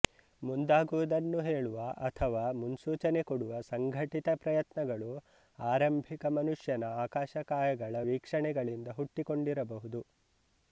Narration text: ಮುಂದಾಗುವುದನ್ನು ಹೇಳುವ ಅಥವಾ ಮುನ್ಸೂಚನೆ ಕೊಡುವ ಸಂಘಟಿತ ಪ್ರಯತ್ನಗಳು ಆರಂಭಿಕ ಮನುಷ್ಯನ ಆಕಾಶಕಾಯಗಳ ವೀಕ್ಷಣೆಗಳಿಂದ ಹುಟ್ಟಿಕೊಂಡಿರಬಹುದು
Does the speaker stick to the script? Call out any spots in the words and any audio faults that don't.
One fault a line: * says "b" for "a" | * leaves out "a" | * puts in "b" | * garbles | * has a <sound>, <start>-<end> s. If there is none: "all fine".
all fine